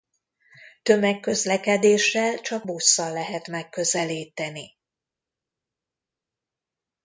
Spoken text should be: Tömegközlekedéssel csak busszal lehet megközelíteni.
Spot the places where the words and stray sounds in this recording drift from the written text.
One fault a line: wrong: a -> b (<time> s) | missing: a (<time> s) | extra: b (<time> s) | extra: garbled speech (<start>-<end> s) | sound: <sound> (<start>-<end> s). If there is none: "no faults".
no faults